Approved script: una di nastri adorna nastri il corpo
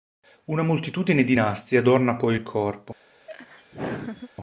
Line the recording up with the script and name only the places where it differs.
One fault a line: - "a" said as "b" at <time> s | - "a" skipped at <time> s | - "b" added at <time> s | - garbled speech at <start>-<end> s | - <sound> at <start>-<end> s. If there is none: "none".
- "moltitudine" added at 0.6 s
- "nastri" said as "poi" at 2.1 s
- laugh at 3.3-4.3 s